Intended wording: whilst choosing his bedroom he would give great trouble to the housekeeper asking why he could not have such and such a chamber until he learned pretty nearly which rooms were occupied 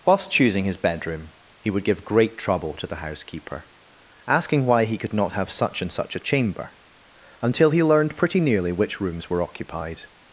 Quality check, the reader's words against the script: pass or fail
pass